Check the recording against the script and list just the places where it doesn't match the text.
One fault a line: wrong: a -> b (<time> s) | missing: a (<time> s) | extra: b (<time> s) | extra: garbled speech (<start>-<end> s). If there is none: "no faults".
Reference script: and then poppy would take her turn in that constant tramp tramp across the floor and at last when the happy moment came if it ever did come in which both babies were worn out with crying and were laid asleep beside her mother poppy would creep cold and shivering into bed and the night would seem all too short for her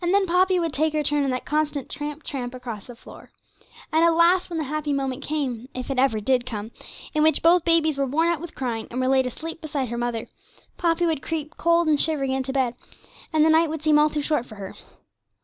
no faults